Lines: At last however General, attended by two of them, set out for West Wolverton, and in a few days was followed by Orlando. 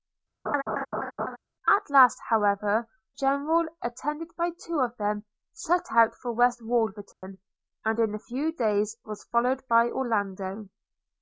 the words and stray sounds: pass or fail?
fail